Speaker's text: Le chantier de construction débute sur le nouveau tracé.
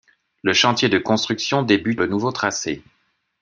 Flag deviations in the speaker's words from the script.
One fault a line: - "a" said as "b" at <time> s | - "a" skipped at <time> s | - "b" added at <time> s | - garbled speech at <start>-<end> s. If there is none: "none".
- "sur" skipped at 2.0 s